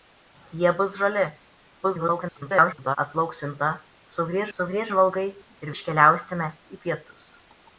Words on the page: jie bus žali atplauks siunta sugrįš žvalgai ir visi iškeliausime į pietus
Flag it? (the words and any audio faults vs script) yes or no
yes